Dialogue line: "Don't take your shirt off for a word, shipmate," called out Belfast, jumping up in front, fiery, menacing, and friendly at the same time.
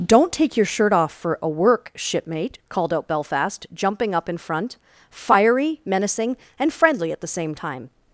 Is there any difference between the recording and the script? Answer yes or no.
yes